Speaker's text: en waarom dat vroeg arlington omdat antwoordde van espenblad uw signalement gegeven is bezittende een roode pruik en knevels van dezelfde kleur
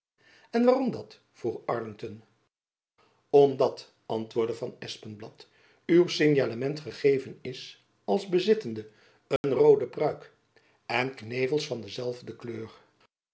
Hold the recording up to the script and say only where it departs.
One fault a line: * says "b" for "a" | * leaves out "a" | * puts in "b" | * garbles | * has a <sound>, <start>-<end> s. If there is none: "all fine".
* puts in "als"
* has a dropout, 9.4-9.4 s